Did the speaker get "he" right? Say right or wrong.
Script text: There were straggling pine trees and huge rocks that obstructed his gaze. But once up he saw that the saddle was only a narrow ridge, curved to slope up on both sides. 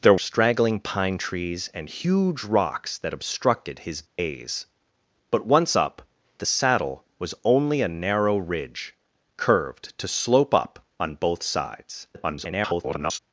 wrong